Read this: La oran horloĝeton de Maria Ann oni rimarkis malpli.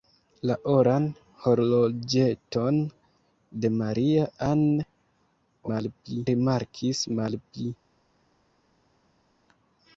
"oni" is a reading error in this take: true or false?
true